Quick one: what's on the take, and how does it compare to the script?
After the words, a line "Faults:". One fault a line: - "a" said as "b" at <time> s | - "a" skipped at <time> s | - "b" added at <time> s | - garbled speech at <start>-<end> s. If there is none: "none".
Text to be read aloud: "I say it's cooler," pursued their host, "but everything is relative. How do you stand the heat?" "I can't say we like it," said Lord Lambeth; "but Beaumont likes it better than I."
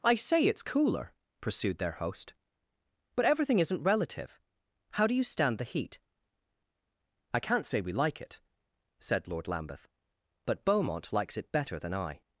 "I say it's cooler," pursued their host, "but everything isn't relative. How do you stand the heat?" "I can't say we like it," said Lord Lambeth; "but Beaumont likes it better than I."
Faults:
- "is" said as "isn't" at 3.6 s